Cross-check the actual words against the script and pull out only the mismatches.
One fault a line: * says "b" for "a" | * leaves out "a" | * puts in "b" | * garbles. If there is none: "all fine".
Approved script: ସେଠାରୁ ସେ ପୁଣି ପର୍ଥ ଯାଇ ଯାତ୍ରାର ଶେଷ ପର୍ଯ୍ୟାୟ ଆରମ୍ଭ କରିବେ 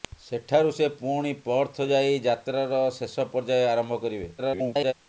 * garbles